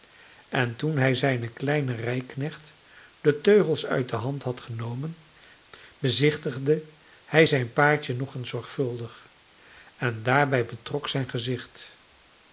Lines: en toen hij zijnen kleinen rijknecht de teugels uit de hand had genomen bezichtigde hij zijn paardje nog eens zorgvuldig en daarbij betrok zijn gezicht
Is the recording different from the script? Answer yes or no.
no